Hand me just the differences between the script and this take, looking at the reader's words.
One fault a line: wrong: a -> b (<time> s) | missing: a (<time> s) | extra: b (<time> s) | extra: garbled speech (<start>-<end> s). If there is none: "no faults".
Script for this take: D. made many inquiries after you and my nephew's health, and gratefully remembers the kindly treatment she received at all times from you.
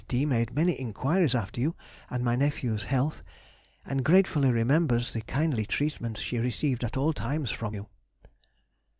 no faults